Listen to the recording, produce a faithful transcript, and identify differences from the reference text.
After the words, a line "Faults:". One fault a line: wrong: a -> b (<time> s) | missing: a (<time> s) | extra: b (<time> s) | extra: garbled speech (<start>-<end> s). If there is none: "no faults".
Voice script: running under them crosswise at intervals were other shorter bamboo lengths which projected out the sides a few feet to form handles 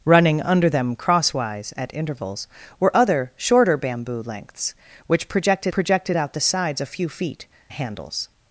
running under them crosswise at intervals were other shorter bamboo lengths which projected projected out the sides a few feet handles
Faults:
extra: projected (5.7 s)
missing: to form (7.5 s)